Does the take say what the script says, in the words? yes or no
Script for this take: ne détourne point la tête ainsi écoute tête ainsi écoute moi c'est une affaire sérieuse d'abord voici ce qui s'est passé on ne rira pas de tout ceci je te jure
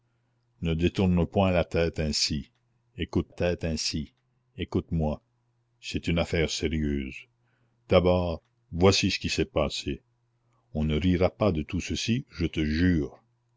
yes